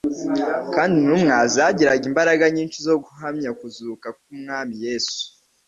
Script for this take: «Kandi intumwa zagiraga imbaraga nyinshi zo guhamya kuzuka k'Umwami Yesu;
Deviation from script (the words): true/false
false